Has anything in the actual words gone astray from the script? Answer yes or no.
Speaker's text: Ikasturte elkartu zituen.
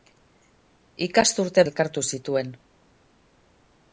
no